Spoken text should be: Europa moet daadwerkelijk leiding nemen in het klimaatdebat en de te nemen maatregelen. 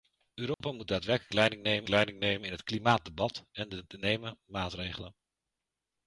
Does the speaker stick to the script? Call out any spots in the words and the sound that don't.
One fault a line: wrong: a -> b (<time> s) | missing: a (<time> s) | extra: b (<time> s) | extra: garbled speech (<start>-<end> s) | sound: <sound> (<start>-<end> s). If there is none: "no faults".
sound: dropout (0.5-0.6 s)
extra: leiding nemen (1.9 s)